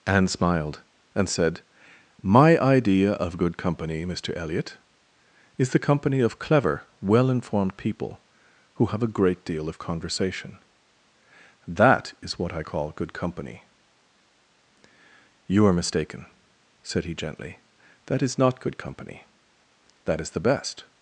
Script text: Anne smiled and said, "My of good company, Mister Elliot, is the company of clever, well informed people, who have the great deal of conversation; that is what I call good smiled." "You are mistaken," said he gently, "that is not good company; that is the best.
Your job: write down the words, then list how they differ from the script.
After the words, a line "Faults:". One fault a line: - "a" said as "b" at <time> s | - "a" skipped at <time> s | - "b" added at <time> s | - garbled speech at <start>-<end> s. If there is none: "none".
Anne smiled and said, "My idea of good company, Mister Elliot, is the company of clever, well informed people, who have a great deal of conversation; that is what I call good company." "You are mistaken," said he gently, "that is not good company; that is the best.
Faults:
- "idea" added at 2.6 s
- "the" said as "a" at 9.0 s
- "smiled" said as "company" at 13.1 s